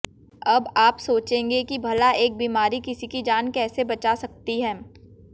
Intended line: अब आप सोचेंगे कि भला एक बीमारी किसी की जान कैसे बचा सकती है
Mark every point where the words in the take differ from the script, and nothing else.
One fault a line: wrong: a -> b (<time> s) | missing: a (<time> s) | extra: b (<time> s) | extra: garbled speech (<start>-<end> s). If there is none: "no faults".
no faults